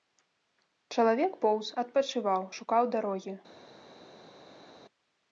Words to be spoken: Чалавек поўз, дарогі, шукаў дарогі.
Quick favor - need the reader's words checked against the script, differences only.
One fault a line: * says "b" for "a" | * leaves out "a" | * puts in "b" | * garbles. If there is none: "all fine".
* says "адпачываў" for "дарогі"